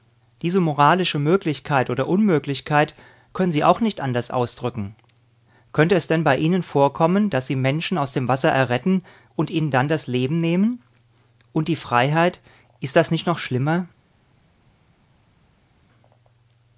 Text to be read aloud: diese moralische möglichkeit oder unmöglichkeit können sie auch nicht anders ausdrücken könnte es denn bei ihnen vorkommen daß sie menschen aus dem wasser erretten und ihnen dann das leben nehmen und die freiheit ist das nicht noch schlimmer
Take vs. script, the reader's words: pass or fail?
pass